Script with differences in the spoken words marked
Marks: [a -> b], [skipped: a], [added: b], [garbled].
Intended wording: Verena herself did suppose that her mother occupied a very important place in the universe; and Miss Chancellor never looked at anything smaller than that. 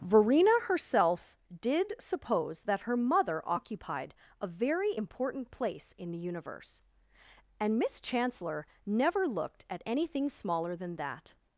Verena herself did suppose that her mother occupied a very important place in the universe; and Miss Chancellor never looked at anything smaller than that.